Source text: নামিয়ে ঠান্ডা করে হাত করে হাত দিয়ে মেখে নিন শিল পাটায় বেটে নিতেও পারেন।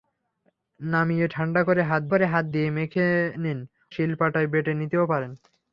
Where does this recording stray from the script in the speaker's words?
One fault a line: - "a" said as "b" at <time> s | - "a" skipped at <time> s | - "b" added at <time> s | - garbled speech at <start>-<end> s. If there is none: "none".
none